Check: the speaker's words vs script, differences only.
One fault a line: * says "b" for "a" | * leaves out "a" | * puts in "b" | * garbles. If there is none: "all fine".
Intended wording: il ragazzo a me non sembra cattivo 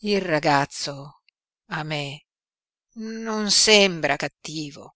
all fine